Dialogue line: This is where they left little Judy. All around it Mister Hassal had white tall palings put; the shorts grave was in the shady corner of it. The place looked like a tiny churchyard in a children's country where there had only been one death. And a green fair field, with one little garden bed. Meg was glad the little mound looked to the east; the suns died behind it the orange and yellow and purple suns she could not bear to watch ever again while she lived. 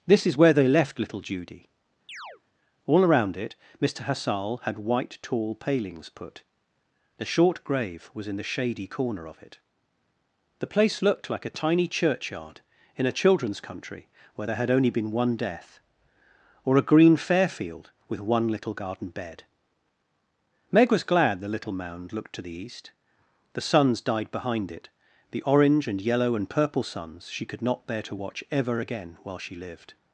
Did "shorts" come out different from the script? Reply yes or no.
yes